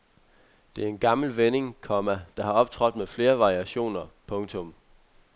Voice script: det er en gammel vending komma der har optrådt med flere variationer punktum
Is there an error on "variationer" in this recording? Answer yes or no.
no